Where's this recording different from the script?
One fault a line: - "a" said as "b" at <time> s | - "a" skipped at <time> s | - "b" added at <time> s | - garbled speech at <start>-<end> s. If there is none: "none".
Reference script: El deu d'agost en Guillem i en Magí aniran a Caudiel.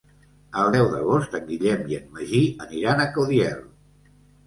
none